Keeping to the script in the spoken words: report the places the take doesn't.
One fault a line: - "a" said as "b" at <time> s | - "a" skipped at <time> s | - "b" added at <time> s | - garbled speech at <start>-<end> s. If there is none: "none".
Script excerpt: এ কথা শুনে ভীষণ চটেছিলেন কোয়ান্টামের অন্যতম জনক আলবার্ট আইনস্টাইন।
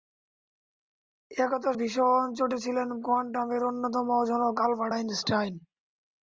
- "শুনে" skipped at 1.7 s